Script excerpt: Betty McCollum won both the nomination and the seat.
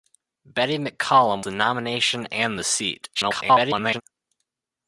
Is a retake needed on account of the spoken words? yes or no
yes